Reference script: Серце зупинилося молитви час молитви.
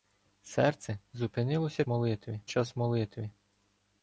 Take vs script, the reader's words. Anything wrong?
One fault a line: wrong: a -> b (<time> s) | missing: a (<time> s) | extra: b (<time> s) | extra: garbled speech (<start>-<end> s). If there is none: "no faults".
no faults